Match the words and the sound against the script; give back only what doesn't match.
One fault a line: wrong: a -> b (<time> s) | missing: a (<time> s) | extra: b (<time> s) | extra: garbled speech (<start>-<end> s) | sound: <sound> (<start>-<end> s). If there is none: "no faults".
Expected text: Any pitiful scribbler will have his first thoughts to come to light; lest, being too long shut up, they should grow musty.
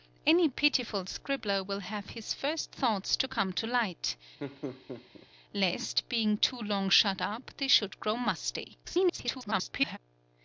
sound: laugh (4.4-5.3 s)
extra: garbled speech (8.8-10.0 s)